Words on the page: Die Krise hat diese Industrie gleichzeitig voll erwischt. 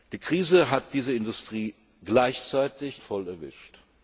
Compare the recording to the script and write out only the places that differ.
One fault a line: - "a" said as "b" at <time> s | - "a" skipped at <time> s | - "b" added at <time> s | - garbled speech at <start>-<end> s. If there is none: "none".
none